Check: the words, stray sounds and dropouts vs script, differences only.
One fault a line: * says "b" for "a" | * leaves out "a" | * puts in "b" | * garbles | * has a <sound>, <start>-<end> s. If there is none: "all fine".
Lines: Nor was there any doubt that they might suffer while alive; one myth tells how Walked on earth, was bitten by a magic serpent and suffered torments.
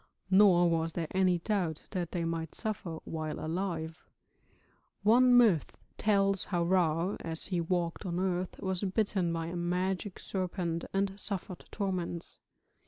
* puts in "Ra as he"